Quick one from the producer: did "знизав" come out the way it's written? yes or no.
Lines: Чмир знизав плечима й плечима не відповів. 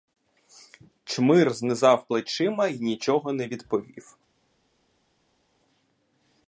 yes